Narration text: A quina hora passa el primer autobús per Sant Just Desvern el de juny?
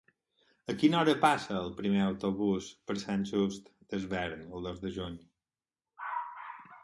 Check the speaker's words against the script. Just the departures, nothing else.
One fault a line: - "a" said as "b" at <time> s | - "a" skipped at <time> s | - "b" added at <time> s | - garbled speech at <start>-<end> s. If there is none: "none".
- "dos" added at 4.7 s